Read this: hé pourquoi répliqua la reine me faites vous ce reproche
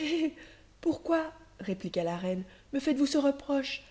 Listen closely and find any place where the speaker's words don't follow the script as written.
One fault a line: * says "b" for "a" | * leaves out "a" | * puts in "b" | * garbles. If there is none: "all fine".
all fine